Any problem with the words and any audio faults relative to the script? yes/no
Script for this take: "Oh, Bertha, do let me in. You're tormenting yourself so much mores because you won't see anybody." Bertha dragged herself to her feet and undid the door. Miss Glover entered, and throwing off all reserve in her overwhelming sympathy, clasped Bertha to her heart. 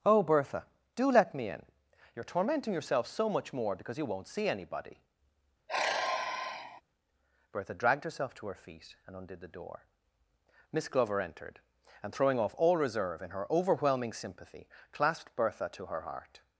yes